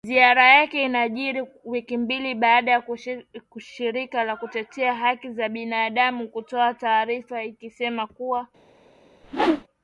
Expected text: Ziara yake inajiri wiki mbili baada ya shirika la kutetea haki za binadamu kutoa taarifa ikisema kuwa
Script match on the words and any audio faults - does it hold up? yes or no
no